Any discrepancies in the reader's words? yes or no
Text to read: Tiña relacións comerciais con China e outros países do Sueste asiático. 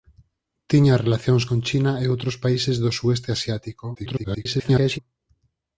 yes